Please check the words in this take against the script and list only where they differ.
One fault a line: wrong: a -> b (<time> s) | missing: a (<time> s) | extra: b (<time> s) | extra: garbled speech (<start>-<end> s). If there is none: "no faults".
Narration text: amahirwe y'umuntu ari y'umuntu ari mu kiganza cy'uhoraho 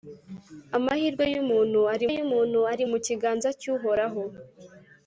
no faults